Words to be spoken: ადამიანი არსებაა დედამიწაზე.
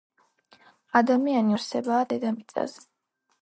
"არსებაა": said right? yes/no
yes